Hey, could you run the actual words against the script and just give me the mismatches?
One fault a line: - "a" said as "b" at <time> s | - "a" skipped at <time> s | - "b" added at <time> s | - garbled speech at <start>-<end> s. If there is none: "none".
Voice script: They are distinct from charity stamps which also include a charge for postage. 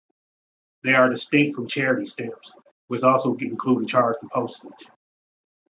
none